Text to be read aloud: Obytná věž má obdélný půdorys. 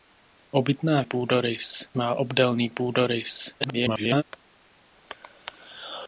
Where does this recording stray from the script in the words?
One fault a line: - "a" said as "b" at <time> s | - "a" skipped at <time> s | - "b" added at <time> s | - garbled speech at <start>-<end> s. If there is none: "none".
- "věž" said as "půdorys" at 1.0 s
- garbled speech at 3.6-4.2 s